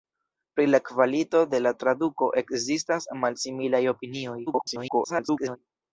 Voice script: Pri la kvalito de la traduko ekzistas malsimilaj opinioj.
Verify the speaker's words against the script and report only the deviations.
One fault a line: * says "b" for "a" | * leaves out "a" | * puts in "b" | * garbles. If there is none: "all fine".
* garbles